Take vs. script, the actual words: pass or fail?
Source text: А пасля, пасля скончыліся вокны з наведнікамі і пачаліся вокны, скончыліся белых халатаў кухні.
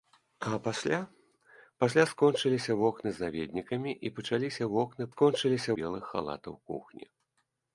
pass